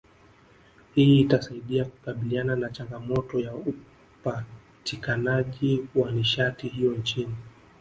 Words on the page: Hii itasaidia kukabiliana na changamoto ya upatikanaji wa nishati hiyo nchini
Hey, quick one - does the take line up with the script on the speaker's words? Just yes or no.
yes